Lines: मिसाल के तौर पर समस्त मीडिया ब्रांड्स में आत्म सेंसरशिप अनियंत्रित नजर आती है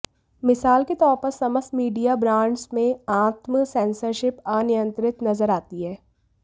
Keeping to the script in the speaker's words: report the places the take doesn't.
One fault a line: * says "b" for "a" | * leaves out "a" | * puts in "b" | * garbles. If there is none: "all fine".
all fine